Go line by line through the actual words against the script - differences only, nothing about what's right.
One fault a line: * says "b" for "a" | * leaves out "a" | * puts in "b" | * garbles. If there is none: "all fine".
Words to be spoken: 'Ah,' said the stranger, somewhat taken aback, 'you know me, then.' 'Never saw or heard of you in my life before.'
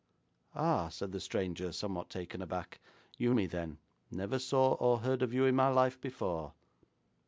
* leaves out "know"